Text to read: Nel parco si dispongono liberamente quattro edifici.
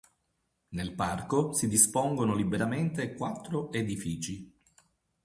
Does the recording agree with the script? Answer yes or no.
yes